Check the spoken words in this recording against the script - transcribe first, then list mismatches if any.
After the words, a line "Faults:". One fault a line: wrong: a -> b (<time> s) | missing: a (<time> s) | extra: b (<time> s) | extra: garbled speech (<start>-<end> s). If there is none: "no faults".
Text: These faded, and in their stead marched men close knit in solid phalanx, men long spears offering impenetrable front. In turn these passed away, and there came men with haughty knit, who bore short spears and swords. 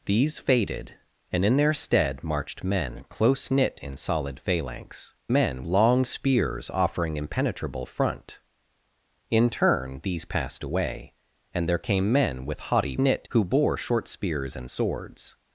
These faded, and in their stead marched men close knit in solid phalanx, men long spears offering impenetrable front. In turn these passed away, and there came men with haughty knit, who bore short spears and swords.
Faults:
no faults